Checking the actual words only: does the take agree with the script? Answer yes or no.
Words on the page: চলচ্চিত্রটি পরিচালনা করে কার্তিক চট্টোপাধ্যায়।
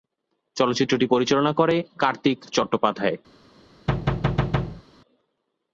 yes